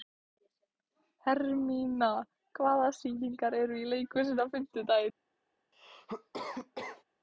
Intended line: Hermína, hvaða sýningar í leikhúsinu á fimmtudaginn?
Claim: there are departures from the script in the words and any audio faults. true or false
true